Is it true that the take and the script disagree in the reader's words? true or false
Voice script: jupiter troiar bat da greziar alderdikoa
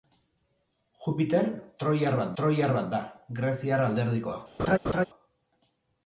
true